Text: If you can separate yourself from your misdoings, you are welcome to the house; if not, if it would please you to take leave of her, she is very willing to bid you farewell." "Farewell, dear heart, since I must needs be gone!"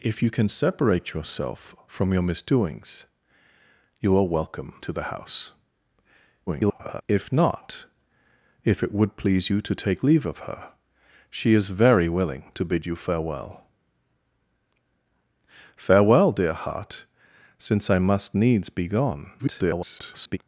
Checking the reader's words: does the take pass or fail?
fail